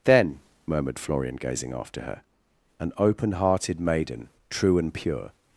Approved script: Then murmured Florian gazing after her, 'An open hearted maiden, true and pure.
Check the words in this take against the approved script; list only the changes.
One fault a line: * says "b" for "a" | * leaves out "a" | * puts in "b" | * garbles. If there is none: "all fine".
all fine